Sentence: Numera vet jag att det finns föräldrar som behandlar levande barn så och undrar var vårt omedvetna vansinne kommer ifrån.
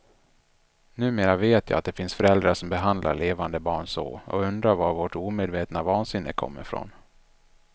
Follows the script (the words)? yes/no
yes